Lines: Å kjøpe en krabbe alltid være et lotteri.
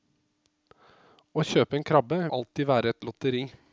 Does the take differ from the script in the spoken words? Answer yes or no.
no